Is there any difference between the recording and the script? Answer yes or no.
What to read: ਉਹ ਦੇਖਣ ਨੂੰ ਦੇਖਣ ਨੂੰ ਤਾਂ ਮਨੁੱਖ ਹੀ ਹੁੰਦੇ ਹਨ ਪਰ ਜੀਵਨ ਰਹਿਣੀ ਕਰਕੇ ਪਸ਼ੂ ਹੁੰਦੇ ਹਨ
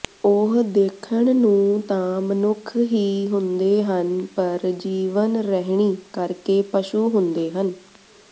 yes